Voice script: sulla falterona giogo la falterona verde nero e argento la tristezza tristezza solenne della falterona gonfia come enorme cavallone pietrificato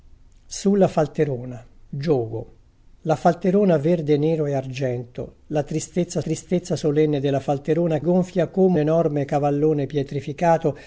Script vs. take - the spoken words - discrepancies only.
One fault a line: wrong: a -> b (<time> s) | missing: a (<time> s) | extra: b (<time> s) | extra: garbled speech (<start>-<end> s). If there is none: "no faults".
no faults